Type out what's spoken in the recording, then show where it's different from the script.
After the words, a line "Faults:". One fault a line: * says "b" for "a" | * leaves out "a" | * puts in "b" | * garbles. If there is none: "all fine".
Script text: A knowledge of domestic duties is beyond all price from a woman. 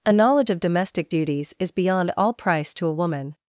A knowledge of domestic duties is beyond all price to a woman.
Faults:
* says "to" for "from"